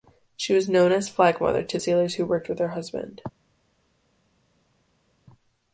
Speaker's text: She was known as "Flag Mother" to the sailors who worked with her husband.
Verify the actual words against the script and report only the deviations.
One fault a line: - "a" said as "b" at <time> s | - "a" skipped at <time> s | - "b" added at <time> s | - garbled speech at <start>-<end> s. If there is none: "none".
- "the" skipped at 1.8 s